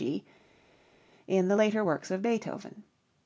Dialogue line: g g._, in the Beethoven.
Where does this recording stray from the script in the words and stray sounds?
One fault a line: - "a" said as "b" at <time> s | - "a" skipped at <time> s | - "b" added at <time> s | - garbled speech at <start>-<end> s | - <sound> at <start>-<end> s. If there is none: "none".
- "g" skipped at 0.2 s
- "later works of" added at 1.5 s